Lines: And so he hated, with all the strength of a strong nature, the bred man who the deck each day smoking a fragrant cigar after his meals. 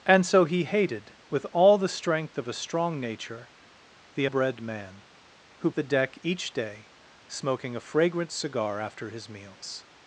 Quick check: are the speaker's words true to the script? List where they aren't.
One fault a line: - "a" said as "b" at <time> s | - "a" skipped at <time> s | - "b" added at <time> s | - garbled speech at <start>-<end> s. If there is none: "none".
none